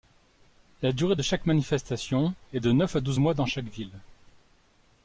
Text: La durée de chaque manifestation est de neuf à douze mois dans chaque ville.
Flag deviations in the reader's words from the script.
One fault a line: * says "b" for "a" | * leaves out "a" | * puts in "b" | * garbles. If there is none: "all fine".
all fine